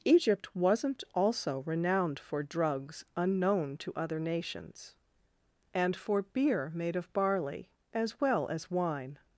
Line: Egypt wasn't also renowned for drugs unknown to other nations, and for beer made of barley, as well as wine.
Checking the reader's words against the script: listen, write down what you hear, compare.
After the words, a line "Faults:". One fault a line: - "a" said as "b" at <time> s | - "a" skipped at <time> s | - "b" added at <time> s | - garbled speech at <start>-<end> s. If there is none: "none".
Egypt wasn't also renowned for drugs unknown to other nations, and for beer made of barley, as well as wine.
Faults:
none